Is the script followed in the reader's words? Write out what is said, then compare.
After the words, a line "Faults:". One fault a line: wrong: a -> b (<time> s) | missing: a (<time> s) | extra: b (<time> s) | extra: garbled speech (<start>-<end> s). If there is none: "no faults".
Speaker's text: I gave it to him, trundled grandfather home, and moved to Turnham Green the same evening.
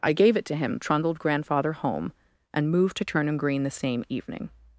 I gave it to him, trundled grandfather home, and moved to Turnham Green the same evening.
Faults:
no faults